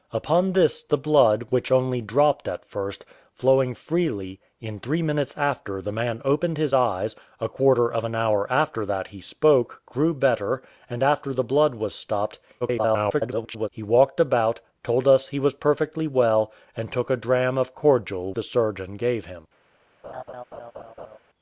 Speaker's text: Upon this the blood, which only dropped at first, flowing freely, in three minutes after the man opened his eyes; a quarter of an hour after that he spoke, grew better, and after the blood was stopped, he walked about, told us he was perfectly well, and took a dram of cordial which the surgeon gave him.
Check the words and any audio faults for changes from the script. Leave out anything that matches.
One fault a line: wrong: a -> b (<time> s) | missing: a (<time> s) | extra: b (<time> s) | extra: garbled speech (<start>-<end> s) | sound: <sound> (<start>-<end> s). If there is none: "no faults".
extra: garbled speech (12.6-13.7 s)
missing: which (18.3 s)
sound: laugh (20.0-21.2 s)